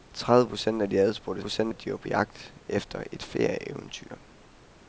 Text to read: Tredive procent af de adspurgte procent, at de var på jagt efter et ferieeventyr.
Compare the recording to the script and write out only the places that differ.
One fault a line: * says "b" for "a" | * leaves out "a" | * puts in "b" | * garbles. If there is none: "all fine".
all fine